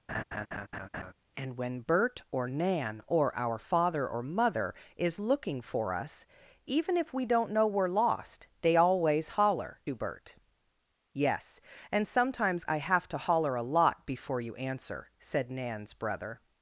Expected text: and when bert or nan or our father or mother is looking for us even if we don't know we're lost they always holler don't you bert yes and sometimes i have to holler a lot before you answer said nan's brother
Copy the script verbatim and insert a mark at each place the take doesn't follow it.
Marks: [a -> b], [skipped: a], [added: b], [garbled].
and when bert or nan or our father or mother is looking for us even if we don't know we're lost they always holler [skipped: don't] you bert yes and sometimes i have to holler a lot before you answer said nan's brother